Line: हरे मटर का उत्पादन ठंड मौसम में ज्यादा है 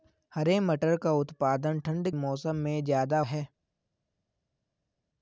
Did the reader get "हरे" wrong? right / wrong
right